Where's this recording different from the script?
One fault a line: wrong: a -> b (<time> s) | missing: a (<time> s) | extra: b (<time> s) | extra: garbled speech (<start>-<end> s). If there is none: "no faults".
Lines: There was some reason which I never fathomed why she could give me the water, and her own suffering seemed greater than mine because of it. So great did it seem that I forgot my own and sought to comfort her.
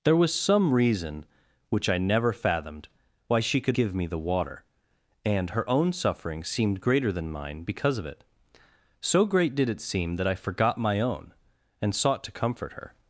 no faults